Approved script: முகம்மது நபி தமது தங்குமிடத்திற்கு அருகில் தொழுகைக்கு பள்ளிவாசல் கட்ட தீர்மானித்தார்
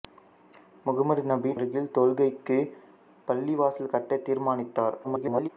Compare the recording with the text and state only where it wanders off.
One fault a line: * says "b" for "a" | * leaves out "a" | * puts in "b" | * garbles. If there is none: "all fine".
* leaves out "தமது தங்குமிடத்திற்கு"
* garbles